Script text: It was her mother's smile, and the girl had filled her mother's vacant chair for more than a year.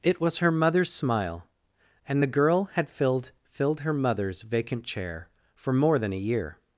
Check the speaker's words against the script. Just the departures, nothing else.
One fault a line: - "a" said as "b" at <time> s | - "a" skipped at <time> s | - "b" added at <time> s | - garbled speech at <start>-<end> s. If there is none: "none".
- "filled" added at 3.4 s